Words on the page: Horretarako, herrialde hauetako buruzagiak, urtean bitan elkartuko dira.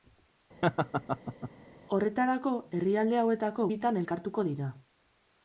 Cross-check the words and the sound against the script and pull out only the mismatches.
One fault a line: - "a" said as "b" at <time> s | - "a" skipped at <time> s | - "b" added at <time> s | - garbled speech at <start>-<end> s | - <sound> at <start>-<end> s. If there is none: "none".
- laugh at 0.6-1.5 s
- "buruzagiak urtean" skipped at 3.7 s